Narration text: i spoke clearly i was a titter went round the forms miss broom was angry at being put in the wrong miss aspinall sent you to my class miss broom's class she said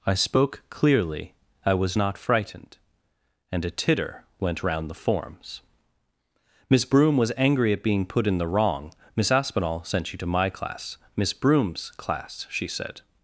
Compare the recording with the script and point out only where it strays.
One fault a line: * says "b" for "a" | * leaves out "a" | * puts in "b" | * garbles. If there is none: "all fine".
* puts in "not frightened and"